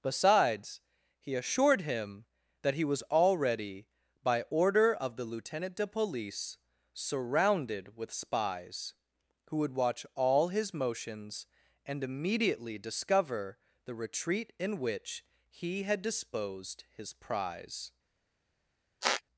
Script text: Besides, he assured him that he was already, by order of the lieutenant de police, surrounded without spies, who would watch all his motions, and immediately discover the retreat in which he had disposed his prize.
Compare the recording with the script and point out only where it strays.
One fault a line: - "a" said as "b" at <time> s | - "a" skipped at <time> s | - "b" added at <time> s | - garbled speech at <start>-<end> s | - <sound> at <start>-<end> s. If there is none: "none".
- "without" said as "with" at 8.0 s
- squeak at 19.0-19.2 s